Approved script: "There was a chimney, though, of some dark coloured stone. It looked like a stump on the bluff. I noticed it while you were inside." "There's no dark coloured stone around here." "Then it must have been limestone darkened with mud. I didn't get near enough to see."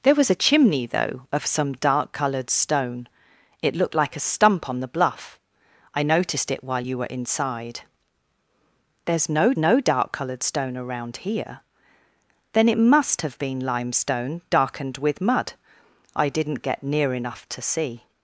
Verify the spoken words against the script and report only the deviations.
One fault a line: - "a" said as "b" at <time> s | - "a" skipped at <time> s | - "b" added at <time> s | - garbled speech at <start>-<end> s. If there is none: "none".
- "no" added at 9.6 s